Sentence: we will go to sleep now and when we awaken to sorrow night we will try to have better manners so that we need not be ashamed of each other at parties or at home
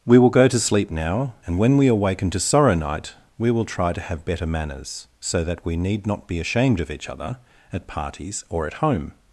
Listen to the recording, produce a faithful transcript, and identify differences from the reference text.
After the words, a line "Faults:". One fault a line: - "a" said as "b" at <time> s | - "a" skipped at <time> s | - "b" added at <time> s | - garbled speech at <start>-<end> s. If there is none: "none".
we will go to sleep now and when we awaken to sorrow night we will try to have better manners so that we need not be ashamed of each other at parties or at home
Faults:
none